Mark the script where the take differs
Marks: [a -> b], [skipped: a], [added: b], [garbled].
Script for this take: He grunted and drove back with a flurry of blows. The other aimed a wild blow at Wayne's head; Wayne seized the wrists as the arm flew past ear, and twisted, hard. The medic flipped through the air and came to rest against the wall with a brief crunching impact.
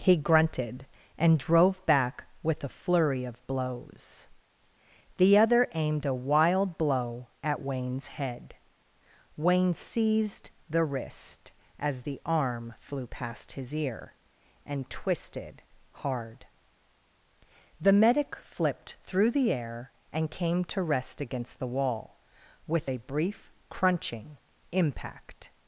He grunted and drove back with a flurry of blows. The other aimed a wild blow at Wayne's head; Wayne seized the [wrists -> wrist] as the arm flew past [added: his] ear, and twisted, hard. The medic flipped through the air and came to rest against the wall with a brief crunching impact.